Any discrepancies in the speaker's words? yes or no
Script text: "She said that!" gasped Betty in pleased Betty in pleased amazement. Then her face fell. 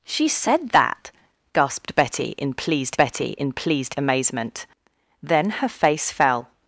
no